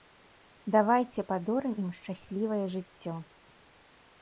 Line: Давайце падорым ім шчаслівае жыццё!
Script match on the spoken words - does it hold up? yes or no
yes